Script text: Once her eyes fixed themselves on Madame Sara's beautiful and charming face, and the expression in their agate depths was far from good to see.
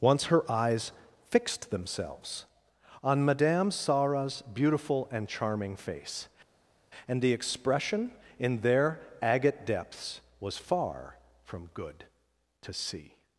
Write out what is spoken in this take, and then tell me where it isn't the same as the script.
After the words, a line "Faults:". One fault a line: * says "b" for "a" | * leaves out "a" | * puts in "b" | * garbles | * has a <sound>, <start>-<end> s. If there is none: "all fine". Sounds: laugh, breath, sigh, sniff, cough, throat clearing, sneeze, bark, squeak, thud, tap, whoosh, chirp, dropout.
Once her eyes fixed themselves on Madame Sara's beautiful and charming face, and the expression in their agate depths was far from good to see.
Faults:
all fine